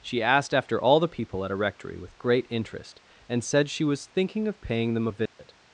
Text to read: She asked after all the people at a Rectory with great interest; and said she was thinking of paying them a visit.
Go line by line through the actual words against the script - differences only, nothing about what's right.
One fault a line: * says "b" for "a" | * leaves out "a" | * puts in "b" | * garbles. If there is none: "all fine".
all fine